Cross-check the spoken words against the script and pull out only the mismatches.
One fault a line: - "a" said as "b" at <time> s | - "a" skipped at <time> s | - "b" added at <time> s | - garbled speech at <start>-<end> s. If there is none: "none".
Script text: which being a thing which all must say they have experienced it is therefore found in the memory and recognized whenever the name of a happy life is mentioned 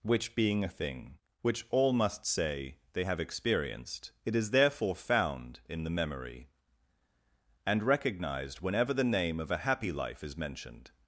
none